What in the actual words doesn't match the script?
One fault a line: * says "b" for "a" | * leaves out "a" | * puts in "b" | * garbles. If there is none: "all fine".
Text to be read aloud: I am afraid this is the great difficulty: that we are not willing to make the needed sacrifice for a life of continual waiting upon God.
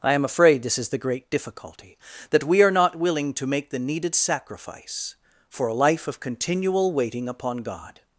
all fine